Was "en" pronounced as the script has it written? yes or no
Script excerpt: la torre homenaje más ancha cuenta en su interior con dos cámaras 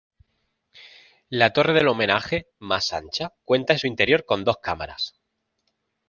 yes